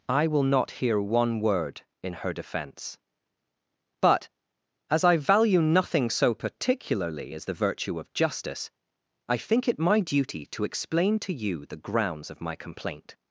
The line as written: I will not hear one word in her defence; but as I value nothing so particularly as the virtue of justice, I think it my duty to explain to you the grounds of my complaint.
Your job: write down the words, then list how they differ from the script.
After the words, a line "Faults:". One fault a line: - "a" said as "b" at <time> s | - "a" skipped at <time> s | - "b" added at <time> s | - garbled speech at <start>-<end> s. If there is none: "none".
I will not hear one word in her defence; but as I value nothing so particularly as the virtue of justice, I think it my duty to explain to you the grounds of my complaint.
Faults:
none